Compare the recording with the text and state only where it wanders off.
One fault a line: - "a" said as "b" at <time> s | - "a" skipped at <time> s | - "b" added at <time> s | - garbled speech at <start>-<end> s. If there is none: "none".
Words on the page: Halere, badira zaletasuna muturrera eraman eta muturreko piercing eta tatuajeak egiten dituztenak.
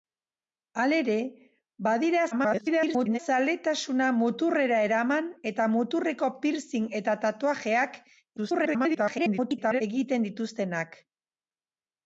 - garbled speech at 2.3-3.2 s
- garbled speech at 8.4-9.8 s